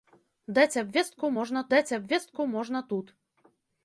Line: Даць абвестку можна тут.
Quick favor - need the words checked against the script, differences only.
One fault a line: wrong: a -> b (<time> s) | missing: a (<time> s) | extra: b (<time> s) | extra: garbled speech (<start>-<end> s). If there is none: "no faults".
extra: даць абвестку можна (1.7 s)